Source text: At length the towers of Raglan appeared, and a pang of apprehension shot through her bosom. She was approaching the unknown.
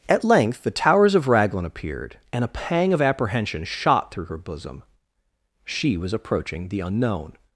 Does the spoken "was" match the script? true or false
true